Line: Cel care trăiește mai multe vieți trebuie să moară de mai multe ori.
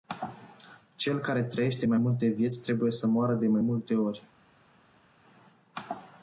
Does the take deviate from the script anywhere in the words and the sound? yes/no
no